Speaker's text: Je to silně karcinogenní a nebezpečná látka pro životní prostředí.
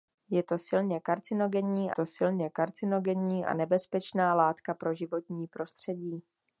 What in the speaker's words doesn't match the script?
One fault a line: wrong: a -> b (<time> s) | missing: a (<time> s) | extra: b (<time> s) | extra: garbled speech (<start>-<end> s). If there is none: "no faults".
extra: to silně karcinogenní (1.9 s)